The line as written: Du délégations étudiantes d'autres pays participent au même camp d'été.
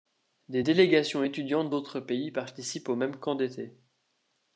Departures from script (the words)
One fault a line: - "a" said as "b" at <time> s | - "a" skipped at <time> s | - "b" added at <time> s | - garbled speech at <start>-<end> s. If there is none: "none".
- "Du" said as "Des" at 0.5 s